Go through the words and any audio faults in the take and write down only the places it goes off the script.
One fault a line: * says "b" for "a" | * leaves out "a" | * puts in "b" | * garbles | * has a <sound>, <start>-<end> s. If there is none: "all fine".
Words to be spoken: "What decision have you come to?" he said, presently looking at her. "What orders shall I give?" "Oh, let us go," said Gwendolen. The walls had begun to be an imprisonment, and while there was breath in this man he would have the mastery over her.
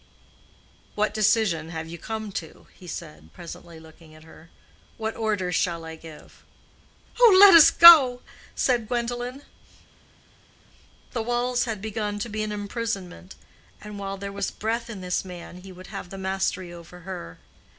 all fine